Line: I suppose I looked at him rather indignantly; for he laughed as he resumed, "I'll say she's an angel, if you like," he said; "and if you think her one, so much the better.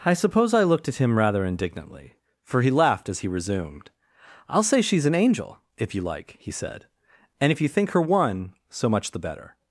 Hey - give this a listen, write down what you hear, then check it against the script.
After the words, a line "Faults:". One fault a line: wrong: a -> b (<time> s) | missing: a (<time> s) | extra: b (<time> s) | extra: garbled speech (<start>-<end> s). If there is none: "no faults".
I suppose I looked at him rather indignantly; for he laughed as he resumed, "I'll say she's an angel, if you like," he said; "and if you think her one, so much the better.
Faults:
no faults